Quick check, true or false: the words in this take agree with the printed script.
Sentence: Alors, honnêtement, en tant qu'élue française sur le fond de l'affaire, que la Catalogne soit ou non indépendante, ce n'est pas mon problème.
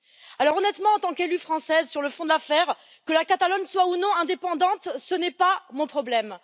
true